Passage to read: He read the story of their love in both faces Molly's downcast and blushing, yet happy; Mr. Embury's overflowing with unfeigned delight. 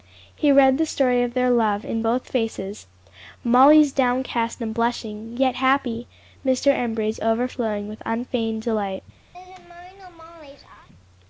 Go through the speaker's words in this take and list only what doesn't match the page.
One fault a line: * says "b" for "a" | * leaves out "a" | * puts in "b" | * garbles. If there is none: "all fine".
all fine